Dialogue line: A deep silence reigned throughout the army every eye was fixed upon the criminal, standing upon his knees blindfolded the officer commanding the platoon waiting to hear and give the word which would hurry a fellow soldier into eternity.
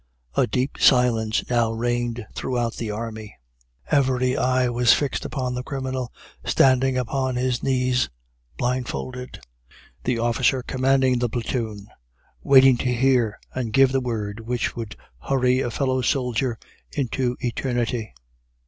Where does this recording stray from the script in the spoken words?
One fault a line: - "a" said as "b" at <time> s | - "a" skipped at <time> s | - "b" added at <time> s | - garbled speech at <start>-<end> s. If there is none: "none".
- "now" added at 1.5 s